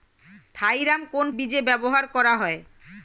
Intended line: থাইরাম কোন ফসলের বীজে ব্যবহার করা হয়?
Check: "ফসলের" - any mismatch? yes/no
yes